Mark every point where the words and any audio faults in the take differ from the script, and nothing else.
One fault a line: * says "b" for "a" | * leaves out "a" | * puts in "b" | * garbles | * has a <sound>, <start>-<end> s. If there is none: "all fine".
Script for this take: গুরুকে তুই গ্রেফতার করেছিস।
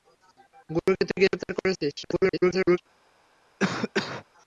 * has a dropout, 0.8-0.9 s
* garbles
* has a cough, 3.6-4.3 s